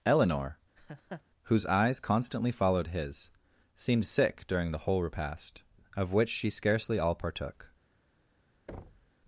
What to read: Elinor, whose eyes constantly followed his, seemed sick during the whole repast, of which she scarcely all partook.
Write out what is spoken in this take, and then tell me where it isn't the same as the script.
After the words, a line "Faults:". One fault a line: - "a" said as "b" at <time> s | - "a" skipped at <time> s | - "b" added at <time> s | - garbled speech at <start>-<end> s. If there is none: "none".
Elinor, whose eyes constantly followed his, seemed sick during the whole repast, of which she scarcely all partook.
Faults:
none